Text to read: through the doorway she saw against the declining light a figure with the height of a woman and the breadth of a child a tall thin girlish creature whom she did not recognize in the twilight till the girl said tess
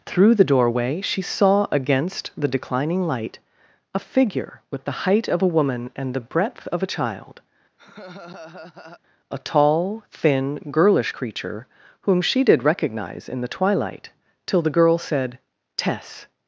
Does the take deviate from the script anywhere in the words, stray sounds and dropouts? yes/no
yes